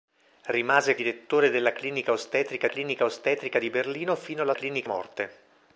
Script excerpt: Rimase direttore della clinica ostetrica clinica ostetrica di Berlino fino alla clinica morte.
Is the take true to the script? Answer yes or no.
yes